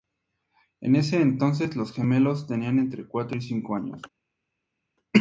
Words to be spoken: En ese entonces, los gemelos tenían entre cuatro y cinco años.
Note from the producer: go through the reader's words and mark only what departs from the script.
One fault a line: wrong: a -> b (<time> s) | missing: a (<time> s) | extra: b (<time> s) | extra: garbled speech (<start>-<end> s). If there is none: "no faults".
no faults